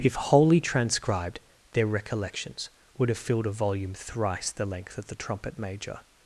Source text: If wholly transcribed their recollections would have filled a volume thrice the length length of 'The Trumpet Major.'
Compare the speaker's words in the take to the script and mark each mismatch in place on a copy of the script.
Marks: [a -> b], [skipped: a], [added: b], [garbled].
If wholly transcribed their recollections would have filled a volume thrice the length [skipped: length] of 'The Trumpet Major.'